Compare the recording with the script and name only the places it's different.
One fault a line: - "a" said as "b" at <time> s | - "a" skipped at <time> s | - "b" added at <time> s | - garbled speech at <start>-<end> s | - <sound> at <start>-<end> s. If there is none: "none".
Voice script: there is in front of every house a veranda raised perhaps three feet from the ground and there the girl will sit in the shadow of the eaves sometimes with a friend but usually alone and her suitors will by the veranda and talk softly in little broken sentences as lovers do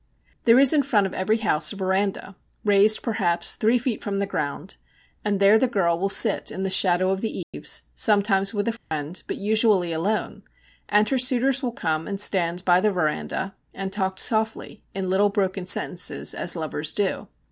- dropout at 7.4-7.5 s
- dropout at 8.8-8.9 s
- "come and stand" added at 11.7 s